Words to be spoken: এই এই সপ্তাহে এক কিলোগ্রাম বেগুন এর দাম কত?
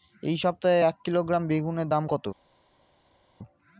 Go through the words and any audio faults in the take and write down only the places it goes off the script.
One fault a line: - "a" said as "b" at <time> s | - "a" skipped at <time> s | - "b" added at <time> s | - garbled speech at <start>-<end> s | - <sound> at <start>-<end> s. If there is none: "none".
- "এই" skipped at 0.3 s